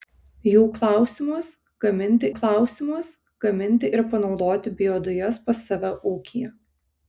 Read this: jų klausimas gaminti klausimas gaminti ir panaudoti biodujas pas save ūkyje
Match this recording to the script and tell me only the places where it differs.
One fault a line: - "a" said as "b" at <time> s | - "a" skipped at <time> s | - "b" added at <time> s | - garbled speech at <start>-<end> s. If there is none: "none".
none